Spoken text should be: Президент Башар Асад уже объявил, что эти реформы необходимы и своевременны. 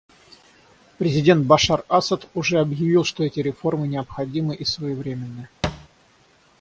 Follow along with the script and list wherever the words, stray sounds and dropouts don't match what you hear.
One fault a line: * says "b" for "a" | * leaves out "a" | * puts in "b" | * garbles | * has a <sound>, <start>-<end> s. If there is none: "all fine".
* has a thud, 5.6-5.9 s